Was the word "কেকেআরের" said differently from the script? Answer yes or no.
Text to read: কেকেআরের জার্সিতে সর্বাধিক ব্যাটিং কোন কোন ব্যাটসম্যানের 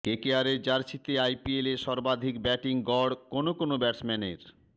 no